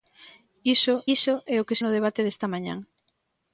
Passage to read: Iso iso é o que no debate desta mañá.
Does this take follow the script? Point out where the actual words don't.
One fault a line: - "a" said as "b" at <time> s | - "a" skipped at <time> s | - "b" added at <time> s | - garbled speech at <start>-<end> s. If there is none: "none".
none